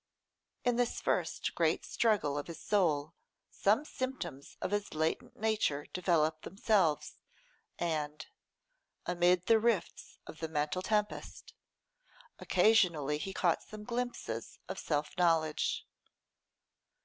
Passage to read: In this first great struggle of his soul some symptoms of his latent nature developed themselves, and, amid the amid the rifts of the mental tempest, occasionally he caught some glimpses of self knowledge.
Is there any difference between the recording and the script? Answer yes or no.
yes